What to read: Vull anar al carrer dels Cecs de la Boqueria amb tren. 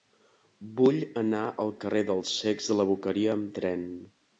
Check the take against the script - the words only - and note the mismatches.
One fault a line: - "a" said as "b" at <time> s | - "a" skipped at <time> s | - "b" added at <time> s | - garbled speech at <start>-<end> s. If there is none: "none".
none